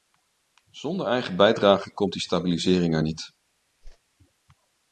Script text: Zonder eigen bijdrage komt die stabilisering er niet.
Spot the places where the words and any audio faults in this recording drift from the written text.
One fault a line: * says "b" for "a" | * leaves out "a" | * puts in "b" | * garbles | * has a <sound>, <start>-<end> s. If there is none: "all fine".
* has a whoosh, 3.8-4.0 s